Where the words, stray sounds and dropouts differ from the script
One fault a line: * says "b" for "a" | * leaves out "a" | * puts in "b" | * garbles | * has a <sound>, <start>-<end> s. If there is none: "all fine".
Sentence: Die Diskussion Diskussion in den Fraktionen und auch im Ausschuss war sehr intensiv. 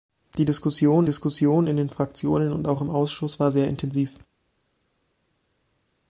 all fine